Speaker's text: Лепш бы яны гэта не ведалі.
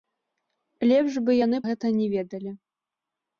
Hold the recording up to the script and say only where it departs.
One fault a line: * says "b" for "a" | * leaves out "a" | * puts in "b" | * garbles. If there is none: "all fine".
all fine